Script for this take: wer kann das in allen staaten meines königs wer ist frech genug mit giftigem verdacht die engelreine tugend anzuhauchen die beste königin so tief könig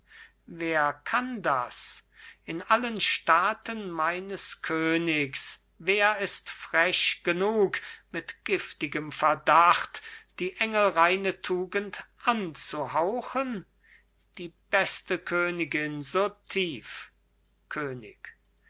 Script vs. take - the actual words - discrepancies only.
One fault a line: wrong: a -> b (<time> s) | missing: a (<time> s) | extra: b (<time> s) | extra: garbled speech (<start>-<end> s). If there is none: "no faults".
no faults